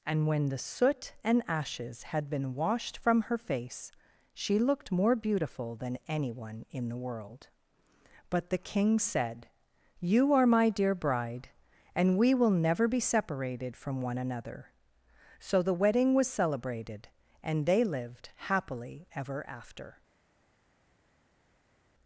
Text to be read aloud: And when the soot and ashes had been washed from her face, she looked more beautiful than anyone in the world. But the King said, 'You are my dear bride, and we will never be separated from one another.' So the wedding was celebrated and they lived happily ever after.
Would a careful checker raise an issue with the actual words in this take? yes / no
no